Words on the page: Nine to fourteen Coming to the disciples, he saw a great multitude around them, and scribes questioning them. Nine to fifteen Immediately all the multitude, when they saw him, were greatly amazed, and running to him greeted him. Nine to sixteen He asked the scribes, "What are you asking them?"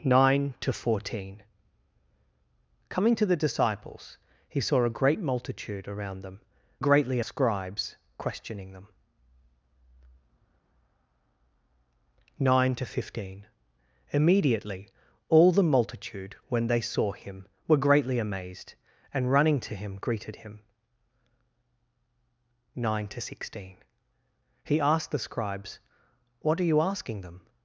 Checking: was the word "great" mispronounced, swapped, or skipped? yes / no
no